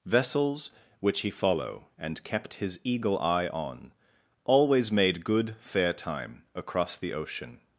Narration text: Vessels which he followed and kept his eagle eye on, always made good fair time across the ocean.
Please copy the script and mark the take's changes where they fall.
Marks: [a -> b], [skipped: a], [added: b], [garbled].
Vessels which he [followed -> follow] and kept his eagle eye on, always made good fair time across the ocean.